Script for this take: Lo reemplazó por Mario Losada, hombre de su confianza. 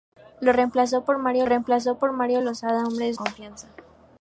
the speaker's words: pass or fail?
fail